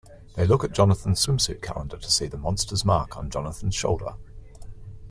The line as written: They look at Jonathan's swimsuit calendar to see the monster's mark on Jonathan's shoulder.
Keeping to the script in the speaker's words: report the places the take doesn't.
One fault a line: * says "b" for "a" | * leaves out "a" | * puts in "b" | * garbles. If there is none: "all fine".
all fine